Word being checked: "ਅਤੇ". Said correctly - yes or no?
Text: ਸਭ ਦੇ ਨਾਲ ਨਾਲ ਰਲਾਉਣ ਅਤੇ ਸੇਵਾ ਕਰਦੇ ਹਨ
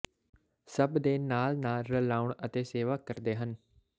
yes